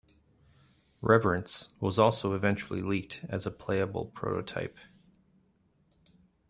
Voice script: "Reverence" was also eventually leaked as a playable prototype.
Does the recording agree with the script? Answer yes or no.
yes